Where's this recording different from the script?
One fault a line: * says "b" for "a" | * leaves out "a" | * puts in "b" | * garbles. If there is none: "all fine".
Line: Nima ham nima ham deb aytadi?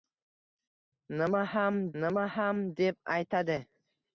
all fine